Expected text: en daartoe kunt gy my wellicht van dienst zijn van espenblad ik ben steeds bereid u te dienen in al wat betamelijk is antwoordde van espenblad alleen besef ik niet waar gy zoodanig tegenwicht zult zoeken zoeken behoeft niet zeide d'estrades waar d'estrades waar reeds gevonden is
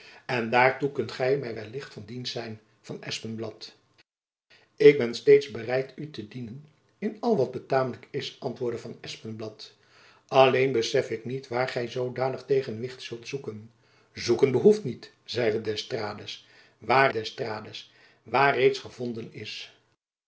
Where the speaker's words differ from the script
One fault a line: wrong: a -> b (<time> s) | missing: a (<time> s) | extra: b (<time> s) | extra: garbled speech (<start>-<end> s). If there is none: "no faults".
no faults